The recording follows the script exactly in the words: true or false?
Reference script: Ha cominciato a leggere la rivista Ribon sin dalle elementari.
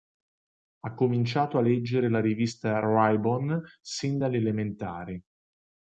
true